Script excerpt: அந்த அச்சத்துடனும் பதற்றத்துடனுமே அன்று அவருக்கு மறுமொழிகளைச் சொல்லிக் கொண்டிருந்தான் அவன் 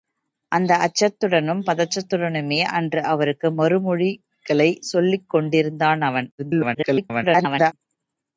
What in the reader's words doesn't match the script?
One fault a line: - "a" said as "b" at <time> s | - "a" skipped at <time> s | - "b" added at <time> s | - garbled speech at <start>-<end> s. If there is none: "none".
- garbled speech at 6.4-7.7 s